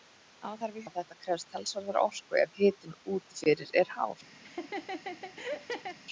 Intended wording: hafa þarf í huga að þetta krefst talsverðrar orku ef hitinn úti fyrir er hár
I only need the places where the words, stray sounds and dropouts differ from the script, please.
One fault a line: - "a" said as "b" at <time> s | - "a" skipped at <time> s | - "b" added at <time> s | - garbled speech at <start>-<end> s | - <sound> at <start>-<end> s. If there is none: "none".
- "huga" skipped at 0.8 s
- laugh at 4.4-6.0 s